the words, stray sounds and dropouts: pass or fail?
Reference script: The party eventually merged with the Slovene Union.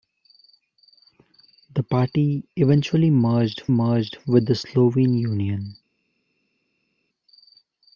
fail